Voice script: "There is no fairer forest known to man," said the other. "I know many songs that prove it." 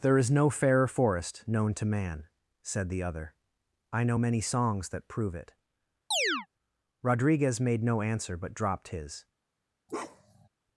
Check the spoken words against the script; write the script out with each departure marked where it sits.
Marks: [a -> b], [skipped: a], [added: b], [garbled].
"There is no fairer forest known to man," said the other. "I know many songs that prove it." [added: Rodriguez made no answer but dropped his]